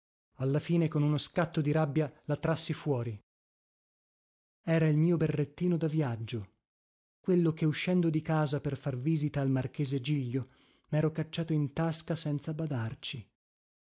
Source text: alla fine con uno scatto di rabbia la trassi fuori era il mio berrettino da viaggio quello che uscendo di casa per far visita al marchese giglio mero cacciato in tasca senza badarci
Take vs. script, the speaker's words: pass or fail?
pass